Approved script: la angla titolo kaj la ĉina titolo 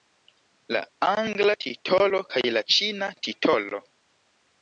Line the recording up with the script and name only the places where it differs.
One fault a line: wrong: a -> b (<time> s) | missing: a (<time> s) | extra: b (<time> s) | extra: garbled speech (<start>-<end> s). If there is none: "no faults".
no faults